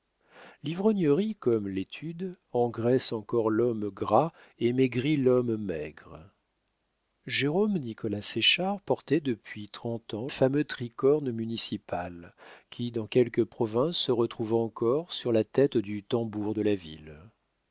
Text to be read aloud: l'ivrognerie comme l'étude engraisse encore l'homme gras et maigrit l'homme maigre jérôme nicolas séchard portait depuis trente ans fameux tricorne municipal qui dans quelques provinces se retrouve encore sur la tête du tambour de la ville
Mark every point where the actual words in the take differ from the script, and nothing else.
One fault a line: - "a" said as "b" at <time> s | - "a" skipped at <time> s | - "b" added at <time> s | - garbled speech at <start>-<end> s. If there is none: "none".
none